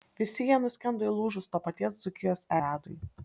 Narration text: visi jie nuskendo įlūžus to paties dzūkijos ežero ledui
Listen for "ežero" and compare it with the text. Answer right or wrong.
wrong